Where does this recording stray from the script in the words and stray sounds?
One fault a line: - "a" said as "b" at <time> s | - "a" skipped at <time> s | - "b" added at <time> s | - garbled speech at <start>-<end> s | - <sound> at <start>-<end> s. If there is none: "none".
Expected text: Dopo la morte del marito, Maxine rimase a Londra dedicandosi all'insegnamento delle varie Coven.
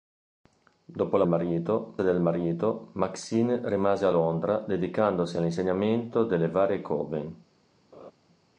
- "morte" said as "marito" at 1.3 s
- laugh at 7.9-8.1 s